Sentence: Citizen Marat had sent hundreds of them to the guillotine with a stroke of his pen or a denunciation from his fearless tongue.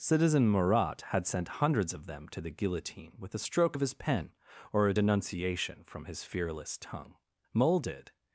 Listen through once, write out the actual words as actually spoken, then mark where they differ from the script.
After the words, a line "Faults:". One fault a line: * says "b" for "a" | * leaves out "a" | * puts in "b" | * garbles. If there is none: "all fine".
Citizen Marat had sent hundreds of them to the guillotine with a stroke of his pen or a denunciation from his fearless tongue. Mole did
Faults:
* puts in "Mole did"